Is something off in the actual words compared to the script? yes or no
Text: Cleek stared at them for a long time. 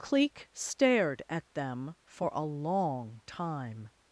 no